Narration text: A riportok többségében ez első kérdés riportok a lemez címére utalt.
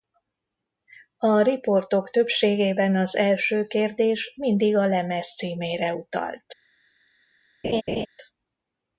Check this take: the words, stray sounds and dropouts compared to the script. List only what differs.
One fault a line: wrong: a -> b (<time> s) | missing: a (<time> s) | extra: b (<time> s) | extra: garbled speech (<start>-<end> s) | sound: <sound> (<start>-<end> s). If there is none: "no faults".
wrong: ez -> az (3.0 s)
wrong: riportok -> mindig (4.4 s)
sound: laugh (7.6-8.1 s)